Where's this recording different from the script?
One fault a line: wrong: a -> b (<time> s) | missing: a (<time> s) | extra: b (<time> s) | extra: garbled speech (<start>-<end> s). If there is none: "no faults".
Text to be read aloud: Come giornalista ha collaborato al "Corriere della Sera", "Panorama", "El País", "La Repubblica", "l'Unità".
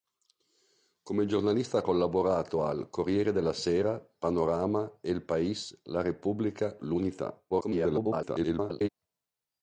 extra: garbled speech (7.5-8.9 s)